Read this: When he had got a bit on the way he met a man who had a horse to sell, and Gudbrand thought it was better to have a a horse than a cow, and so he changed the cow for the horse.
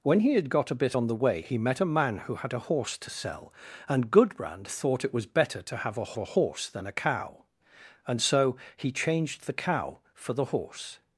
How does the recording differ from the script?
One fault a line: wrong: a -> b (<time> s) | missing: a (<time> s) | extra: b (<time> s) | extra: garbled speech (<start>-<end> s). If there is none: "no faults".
no faults